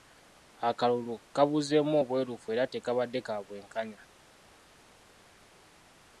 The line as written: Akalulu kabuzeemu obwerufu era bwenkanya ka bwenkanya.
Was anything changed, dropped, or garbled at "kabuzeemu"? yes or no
no